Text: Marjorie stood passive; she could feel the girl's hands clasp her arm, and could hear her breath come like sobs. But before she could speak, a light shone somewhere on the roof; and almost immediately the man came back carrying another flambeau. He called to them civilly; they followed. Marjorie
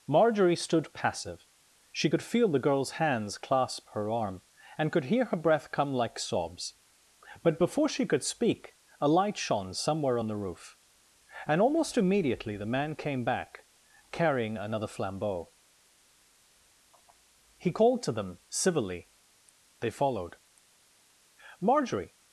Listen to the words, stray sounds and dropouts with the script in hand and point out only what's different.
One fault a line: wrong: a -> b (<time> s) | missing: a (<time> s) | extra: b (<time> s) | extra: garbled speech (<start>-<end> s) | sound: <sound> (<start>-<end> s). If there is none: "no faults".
no faults